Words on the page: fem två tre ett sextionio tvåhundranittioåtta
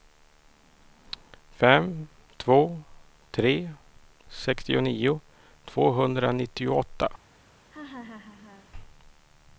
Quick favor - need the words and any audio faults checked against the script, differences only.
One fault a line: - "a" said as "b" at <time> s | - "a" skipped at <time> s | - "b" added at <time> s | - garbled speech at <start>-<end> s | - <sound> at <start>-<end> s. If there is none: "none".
- "ett" skipped at 3.7 s
- laugh at 7.7-8.7 s